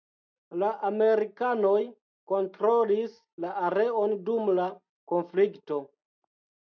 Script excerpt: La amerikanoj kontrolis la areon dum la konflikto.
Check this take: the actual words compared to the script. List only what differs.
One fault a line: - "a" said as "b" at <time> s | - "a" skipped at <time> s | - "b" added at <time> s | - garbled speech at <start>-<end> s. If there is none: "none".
none